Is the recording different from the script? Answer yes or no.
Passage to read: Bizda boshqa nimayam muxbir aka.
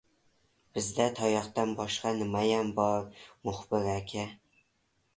yes